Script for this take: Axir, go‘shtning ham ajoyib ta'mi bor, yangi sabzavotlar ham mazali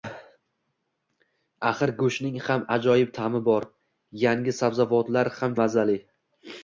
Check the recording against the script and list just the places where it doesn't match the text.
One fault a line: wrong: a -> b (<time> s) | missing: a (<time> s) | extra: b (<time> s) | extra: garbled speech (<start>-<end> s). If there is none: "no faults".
no faults